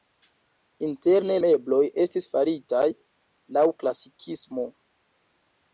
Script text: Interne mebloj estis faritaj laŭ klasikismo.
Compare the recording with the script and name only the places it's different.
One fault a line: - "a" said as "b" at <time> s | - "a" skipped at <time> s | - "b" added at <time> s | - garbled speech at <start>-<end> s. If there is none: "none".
none